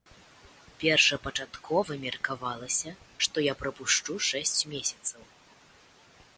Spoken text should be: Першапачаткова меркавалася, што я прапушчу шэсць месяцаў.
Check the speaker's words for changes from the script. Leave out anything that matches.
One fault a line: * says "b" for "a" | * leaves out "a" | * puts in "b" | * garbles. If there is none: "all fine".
all fine